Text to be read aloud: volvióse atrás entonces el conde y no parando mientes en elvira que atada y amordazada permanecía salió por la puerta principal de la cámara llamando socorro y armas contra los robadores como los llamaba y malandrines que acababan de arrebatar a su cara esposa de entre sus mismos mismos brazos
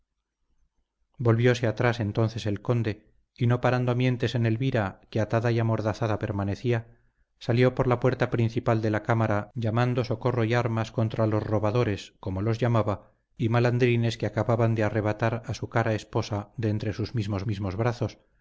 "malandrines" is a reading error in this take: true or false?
false